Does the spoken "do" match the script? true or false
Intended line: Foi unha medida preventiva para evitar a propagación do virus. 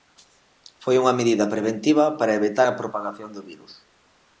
true